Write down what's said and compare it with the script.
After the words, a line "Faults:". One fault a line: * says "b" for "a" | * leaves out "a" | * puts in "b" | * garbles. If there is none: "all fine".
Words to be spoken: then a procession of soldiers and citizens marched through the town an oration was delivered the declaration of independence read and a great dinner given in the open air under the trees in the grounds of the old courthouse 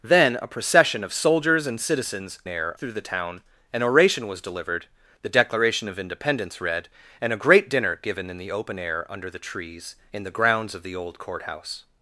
then a procession of soldiers and citizens air through the town an oration was delivered the declaration of independence read and a great dinner given in the open air under the trees in the grounds of the old courthouse
Faults:
* says "air" for "marched"